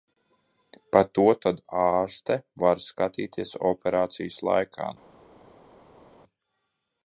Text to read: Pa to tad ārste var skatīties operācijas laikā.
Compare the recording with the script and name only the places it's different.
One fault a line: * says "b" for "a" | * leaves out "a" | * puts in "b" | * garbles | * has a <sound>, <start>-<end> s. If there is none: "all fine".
all fine